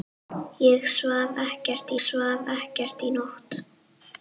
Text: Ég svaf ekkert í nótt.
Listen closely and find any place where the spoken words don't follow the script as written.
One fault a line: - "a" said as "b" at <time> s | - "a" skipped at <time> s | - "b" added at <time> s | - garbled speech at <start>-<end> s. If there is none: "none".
- "svaf ekkert" added at 2.0 s